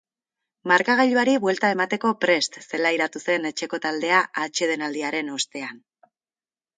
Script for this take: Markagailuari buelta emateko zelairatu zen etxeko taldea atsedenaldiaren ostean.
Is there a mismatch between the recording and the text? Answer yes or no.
yes